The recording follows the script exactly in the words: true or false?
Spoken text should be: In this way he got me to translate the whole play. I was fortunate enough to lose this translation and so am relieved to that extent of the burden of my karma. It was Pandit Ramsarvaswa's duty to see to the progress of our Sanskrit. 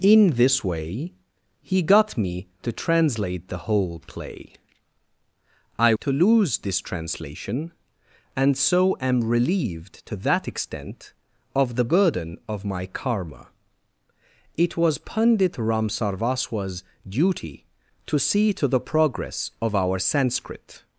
false